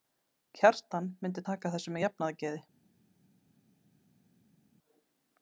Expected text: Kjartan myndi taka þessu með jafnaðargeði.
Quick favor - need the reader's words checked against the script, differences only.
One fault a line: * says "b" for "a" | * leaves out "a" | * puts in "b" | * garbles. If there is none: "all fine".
all fine